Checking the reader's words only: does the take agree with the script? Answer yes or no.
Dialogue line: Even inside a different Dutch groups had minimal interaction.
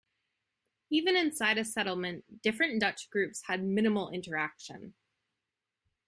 no